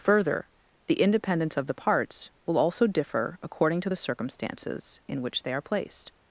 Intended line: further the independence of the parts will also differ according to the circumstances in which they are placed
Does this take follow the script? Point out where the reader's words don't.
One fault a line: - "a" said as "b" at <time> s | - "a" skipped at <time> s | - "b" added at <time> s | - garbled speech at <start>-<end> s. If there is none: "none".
none